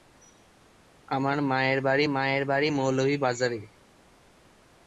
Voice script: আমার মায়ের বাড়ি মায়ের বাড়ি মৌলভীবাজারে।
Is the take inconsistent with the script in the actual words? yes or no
no